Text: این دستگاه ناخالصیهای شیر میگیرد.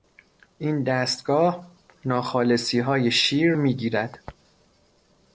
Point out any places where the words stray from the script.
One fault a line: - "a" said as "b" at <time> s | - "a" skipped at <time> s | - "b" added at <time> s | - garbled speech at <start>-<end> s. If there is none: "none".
none